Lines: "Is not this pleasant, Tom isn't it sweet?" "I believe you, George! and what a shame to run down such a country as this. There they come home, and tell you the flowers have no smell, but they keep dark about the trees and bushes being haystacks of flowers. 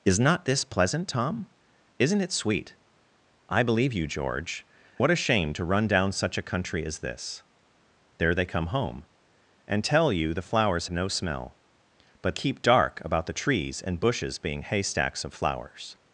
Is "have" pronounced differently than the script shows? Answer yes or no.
yes